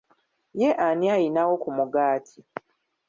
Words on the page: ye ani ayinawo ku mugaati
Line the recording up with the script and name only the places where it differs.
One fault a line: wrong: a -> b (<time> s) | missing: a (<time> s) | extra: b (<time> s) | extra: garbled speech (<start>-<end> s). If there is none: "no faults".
no faults